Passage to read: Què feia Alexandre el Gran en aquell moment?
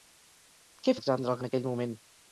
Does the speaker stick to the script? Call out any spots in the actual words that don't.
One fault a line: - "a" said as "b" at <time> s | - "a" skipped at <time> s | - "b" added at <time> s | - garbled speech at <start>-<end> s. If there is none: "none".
- "feia" skipped at 0.9 s
- "Gran" skipped at 1.4 s